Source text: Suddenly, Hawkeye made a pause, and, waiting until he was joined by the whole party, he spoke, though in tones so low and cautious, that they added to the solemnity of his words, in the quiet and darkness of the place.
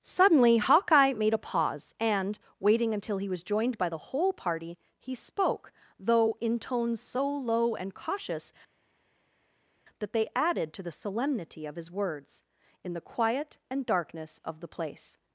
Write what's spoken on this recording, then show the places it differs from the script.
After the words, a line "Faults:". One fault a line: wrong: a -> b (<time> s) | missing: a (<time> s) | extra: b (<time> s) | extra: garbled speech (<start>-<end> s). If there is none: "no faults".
Suddenly, Hawkeye made a pause, and, waiting until he was joined by the whole party, he spoke, though in tones so low and cautious, that they added to the solemnity of his words, in the quiet and darkness of the place.
Faults:
no faults